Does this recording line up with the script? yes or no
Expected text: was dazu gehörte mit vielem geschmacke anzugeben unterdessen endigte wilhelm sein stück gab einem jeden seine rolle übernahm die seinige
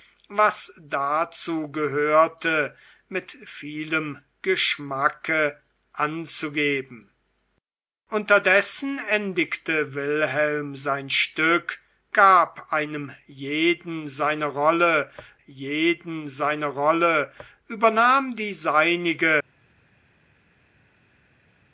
no